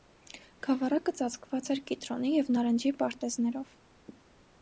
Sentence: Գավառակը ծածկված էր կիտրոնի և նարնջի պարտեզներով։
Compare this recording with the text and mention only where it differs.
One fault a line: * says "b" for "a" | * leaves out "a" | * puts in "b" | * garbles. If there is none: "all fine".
all fine